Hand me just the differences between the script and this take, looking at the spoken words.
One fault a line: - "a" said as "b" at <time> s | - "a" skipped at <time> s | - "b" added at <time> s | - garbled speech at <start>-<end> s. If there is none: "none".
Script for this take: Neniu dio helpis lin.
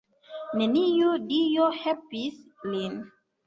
none